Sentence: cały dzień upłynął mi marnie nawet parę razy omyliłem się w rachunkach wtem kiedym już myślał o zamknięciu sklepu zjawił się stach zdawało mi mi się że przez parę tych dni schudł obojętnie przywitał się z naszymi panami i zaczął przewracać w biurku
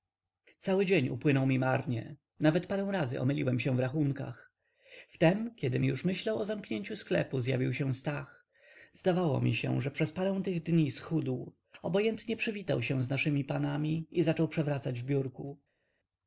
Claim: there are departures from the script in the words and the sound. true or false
true